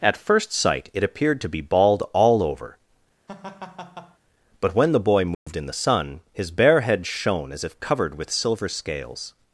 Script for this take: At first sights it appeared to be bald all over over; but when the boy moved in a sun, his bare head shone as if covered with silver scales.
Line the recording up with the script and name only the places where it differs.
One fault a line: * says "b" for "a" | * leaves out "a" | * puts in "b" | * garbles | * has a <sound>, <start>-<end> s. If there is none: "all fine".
* says "sight" for "sights"
* leaves out "over"
* has a laugh, 3.3-4.2 s
* has a dropout, 5.3-5.5 s
* says "the" for "a"